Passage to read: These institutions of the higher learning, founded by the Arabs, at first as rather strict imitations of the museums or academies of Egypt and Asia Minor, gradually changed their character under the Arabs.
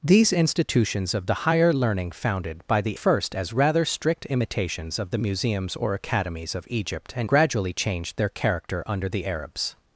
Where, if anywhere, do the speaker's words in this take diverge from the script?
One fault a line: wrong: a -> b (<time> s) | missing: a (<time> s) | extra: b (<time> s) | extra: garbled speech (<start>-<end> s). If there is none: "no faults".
missing: Arabs at (3.0 s)
missing: Asia Minor (7.3 s)